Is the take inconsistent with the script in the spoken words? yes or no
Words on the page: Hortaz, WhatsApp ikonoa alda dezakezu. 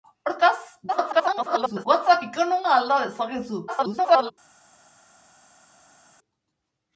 yes